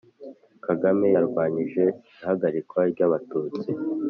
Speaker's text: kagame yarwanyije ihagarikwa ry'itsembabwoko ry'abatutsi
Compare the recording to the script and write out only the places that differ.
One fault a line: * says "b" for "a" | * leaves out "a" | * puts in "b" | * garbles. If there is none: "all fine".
* leaves out "ry'itsembabwoko"